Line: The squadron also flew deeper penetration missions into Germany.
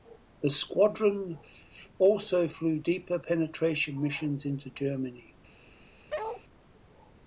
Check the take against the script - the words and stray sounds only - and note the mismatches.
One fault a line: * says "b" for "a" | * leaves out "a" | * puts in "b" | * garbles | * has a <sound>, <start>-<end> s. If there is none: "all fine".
* has a bark, 6.1-6.4 s